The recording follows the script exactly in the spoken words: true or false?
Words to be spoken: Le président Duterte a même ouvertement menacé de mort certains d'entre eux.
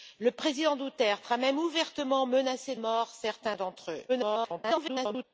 false